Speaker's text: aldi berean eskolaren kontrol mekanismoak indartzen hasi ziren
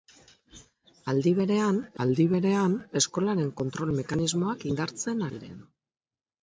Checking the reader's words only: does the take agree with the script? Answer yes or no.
no